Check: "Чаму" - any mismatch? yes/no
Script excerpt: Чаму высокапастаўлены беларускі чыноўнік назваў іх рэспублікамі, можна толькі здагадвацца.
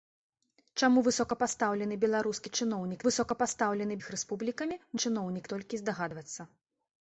no